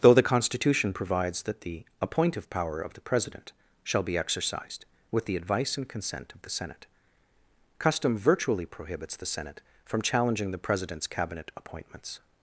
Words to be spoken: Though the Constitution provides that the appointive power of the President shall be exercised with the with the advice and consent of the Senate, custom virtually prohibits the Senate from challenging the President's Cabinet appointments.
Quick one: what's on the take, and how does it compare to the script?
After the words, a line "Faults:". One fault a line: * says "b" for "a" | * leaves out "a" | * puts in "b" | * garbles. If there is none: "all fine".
Though the Constitution provides that the appointive power of the President shall be exercised with the advice and consent of the Senate, custom virtually prohibits the Senate from challenging the President's Cabinet appointments.
Faults:
* leaves out "with the"